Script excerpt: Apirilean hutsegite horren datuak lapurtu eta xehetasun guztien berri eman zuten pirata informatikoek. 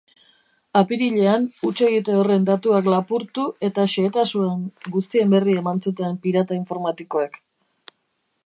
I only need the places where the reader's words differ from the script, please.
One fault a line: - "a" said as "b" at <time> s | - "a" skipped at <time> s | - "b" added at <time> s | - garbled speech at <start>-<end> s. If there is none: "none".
none